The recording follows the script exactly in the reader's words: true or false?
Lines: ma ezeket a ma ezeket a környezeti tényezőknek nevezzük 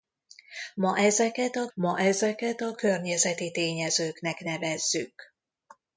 true